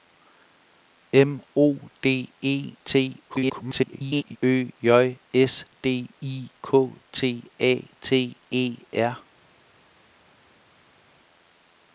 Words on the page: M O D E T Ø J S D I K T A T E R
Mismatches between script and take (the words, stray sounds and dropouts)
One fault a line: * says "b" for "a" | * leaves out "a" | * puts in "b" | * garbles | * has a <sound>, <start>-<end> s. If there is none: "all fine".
* garbles